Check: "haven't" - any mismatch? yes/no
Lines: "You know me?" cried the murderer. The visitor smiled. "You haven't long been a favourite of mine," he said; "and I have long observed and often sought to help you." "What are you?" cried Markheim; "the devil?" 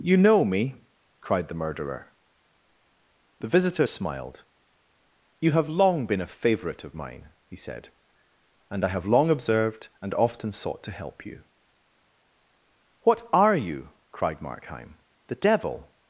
yes